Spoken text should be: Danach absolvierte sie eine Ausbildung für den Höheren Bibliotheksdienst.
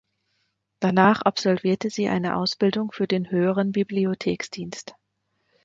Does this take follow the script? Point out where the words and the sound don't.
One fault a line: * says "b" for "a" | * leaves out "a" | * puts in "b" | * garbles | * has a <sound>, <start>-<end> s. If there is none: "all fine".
all fine